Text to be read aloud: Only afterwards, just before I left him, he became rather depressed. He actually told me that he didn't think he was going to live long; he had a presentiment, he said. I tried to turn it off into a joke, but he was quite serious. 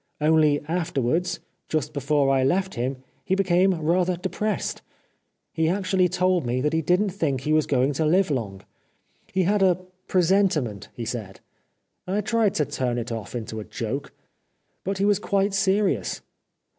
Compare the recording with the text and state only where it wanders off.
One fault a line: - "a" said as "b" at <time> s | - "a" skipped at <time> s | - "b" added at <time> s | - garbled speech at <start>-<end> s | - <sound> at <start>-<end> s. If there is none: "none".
none